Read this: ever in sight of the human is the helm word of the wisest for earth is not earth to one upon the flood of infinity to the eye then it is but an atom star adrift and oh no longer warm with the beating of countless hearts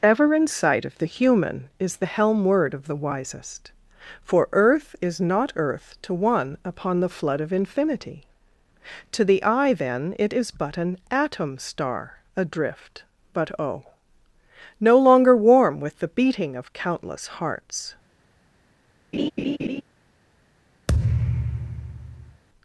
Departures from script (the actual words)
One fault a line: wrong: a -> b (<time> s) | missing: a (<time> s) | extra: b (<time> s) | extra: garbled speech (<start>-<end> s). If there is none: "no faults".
wrong: and -> but (13.3 s)